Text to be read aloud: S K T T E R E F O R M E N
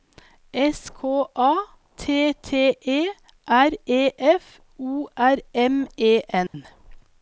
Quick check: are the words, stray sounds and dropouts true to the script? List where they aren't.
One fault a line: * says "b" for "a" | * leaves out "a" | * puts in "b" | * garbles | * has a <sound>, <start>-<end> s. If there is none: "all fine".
* puts in "A"
* has a dropout, 6.5-6.5 s